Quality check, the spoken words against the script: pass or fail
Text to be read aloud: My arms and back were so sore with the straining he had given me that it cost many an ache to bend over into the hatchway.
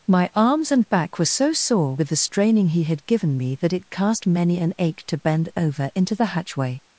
fail